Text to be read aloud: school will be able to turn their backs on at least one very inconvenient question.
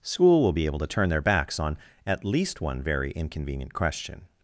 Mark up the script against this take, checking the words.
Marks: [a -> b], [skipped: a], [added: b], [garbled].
school will be able to turn their backs on at least one very inconvenient question.